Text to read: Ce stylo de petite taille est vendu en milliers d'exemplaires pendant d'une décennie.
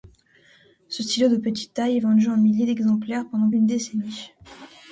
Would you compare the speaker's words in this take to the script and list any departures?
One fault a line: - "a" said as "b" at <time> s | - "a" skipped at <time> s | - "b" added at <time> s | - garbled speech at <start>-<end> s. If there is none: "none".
none